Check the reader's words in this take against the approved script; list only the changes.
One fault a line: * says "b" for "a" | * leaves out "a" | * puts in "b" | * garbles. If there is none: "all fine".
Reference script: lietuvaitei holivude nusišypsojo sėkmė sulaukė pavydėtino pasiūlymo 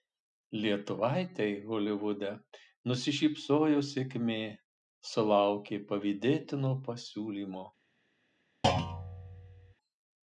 all fine